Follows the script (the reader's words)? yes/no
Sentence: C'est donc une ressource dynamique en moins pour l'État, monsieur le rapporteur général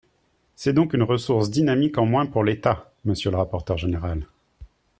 yes